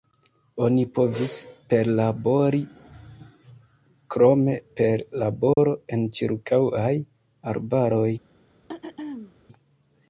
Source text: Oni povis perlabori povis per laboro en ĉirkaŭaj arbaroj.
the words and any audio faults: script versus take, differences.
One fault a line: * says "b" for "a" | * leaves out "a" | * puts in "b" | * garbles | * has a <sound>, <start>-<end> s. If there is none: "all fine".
* says "krome" for "povis"
* has a dropout, 5.5-5.6 s
* has a throat clearing, 8.7-9.3 s